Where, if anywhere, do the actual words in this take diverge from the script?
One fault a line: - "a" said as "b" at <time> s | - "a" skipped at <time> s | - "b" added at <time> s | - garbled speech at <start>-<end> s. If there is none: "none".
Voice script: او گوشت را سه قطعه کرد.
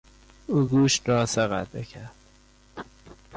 none